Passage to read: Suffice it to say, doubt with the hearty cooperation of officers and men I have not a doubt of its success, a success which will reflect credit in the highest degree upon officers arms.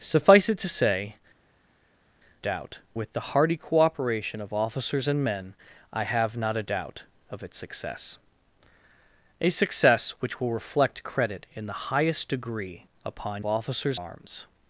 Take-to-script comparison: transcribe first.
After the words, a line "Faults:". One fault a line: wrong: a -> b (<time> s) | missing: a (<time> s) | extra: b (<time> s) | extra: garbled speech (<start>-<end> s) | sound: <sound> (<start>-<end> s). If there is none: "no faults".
Suffice it to say, doubt with the hearty cooperation of officers and men I have not a doubt of its success, a success which will reflect credit in the highest degree upon officers arms.
Faults:
no faults